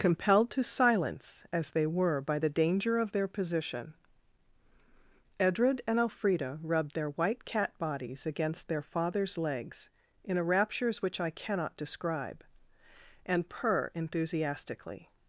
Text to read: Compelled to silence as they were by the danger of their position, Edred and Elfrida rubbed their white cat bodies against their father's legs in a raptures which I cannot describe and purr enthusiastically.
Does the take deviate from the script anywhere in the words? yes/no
no